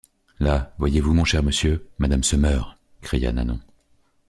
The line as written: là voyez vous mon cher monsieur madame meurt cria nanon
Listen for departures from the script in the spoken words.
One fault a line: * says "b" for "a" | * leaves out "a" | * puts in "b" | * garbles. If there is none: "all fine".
* puts in "se"